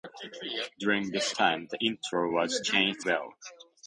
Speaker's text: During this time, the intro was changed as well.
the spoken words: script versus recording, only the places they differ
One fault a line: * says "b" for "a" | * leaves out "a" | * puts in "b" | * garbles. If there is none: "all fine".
* leaves out "as"